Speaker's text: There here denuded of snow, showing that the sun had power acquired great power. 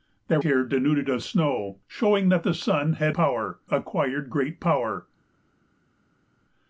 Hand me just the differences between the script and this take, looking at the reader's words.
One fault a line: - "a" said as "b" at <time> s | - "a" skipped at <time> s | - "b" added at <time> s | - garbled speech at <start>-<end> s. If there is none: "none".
none